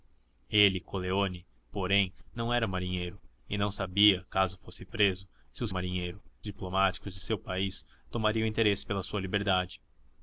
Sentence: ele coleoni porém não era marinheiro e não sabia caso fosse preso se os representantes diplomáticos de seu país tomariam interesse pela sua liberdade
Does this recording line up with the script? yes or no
no